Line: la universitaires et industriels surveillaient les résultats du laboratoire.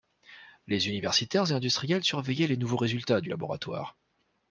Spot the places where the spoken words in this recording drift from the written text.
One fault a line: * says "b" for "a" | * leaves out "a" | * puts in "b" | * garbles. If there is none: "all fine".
* says "les" for "la"
* puts in "nouveaux"